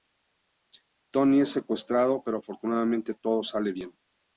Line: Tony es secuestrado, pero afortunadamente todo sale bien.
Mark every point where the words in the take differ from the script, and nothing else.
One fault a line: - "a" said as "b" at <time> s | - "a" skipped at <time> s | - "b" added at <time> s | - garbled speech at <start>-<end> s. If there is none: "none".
none